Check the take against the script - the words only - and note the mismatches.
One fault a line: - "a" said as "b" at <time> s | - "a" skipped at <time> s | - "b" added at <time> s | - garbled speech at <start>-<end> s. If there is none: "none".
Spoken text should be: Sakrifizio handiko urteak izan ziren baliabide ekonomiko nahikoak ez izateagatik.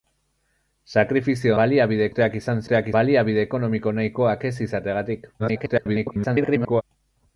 - "handiko" said as "baliabide" at 1.6 s
- "ziren" said as "urteak" at 2.6 s
- garbled speech at 5.4-6.8 s